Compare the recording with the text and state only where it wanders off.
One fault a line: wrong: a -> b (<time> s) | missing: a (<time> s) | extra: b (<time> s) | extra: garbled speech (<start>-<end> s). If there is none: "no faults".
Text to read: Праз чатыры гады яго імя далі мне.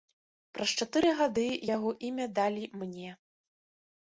no faults